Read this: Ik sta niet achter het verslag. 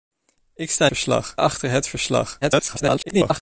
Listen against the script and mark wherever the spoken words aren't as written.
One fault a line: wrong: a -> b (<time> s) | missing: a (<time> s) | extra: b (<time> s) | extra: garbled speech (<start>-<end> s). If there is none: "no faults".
wrong: niet -> verslag (0.8 s)
extra: garbled speech (2.4-3.4 s)